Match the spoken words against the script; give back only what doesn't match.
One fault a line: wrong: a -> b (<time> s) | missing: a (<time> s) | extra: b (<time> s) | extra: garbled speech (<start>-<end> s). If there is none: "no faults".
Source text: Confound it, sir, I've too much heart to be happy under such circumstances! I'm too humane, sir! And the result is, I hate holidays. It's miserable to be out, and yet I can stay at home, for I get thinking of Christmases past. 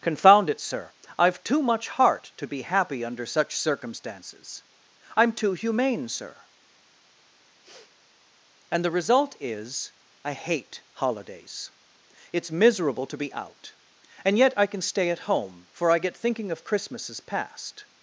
no faults